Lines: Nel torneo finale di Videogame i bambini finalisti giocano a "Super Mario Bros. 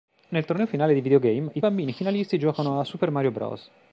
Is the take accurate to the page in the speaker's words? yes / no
yes